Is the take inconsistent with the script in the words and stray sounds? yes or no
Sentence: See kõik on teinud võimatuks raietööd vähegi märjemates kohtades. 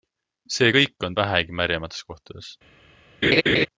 yes